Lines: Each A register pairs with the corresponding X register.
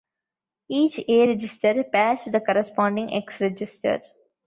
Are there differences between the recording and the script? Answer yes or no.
no